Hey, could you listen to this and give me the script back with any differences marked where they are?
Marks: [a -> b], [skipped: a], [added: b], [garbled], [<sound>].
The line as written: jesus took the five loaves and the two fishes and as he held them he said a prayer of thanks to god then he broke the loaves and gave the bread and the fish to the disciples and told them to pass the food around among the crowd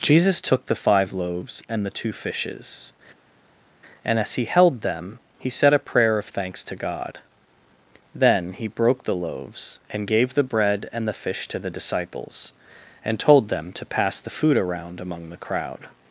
jesus took the five loaves and the two fishes and as he held them he said a prayer of thanks to god then he broke the loaves and gave the bread and the fish to the disciples and told them to pass the food around among the crowd